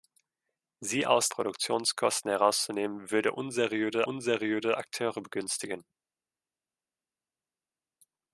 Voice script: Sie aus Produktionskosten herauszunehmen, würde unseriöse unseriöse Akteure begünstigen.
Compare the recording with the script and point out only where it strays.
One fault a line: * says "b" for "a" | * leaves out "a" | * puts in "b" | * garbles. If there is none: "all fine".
all fine